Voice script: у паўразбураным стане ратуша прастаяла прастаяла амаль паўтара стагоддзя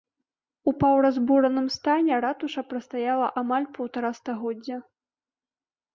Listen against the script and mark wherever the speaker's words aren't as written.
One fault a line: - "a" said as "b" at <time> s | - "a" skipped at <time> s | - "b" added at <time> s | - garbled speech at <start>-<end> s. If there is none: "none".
- "прастаяла" skipped at 3.3 s